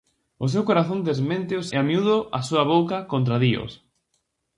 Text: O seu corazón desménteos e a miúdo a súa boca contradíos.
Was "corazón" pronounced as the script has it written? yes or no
yes